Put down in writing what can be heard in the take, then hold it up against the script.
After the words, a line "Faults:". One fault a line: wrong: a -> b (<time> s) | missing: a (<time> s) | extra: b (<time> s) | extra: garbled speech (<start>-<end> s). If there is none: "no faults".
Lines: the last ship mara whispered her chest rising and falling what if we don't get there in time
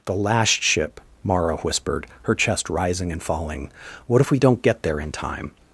the last ship mara whispered her chest rising and falling what if we don't get there in time
Faults:
no faults